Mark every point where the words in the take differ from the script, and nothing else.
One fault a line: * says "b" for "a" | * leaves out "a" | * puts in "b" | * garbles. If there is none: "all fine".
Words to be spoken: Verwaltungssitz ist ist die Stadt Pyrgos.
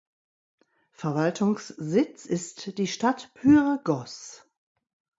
* leaves out "ist"